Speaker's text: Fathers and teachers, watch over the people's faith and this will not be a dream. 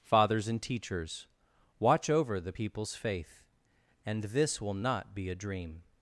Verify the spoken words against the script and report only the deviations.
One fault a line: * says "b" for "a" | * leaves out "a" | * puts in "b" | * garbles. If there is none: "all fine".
all fine